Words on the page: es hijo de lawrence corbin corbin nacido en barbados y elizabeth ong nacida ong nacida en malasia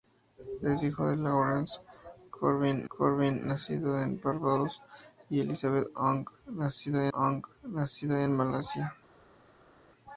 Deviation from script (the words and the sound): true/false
false